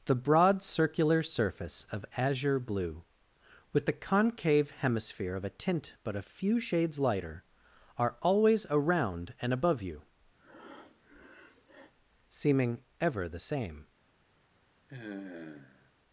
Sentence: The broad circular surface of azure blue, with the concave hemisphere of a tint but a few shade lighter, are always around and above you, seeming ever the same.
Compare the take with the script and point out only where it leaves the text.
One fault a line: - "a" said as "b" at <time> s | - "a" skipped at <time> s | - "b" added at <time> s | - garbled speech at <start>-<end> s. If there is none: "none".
- "shade" said as "shades" at 6.6 s